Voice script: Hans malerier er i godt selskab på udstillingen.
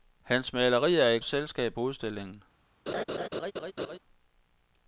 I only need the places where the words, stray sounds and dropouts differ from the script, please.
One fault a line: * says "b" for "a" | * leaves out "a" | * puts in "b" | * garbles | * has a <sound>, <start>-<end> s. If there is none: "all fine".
* leaves out "godt"
* has a laugh, 2.9-4.0 s